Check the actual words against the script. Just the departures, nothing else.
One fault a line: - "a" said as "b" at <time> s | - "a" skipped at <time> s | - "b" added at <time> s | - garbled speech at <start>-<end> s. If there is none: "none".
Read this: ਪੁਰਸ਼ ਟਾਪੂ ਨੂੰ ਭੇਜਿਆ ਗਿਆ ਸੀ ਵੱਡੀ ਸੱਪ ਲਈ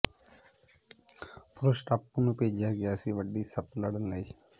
- "ਲੜਨ" added at 3.8 s